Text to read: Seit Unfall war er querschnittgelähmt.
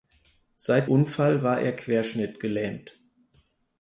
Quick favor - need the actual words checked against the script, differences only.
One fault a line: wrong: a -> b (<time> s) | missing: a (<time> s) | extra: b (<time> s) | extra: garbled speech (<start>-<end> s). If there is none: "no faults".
no faults